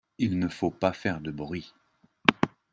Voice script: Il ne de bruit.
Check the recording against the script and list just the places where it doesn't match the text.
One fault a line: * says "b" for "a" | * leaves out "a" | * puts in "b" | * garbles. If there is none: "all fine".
* puts in "faut pas faire"